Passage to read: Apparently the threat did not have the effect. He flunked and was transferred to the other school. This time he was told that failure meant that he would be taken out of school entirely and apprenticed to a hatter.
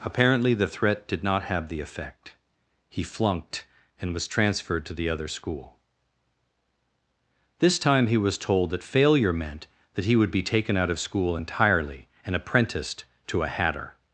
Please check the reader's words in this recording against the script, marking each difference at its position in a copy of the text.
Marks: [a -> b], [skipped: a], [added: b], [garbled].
Apparently the threat did not have the effect. He flunked and was transferred to the other school. This time he was told that failure meant that he would be taken out of school entirely and apprenticed to a hatter.